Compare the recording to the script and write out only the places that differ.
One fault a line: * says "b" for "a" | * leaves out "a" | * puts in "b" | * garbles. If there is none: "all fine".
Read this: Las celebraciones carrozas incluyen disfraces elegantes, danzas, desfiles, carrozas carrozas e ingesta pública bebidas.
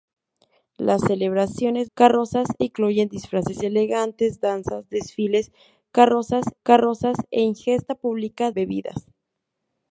all fine